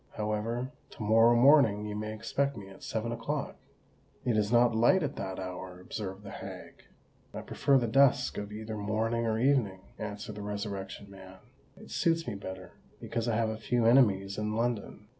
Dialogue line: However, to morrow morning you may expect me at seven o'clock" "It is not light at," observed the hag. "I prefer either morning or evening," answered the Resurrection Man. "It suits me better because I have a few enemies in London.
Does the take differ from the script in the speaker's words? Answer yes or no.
yes